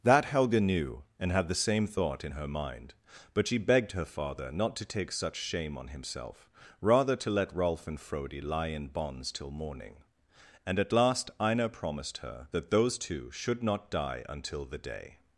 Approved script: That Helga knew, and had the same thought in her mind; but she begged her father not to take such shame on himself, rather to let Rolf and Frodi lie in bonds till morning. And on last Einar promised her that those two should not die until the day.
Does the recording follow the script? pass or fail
fail